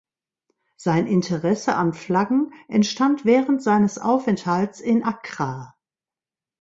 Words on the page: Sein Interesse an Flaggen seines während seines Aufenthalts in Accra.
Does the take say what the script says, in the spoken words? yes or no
no